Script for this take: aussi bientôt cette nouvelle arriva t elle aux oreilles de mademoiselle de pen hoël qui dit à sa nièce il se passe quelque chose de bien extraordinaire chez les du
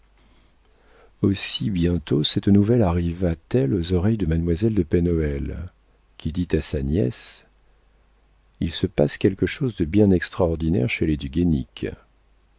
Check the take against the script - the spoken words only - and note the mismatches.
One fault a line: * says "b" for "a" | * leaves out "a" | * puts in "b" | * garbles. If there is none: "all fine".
all fine